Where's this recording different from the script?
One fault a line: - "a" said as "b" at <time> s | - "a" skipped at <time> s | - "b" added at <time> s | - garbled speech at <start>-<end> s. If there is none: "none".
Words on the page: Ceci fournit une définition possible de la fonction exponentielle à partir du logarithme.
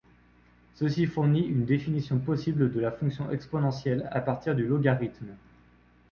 none